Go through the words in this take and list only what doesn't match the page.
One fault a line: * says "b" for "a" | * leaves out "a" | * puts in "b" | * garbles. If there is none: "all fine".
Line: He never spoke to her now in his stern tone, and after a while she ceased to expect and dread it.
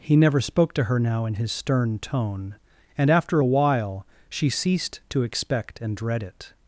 all fine